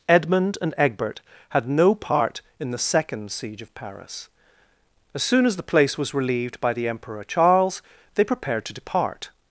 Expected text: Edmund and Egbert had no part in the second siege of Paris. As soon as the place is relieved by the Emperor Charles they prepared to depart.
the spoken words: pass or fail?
fail